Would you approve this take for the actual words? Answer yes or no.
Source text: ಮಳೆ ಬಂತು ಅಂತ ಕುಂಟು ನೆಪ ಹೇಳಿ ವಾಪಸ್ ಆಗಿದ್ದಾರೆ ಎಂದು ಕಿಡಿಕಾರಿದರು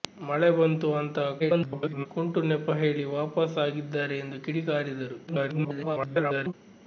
no